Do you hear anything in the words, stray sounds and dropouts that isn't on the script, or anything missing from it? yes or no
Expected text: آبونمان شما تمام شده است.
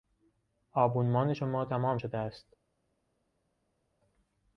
no